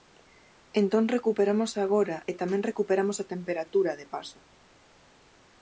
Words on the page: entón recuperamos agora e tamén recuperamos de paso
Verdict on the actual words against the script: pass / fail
fail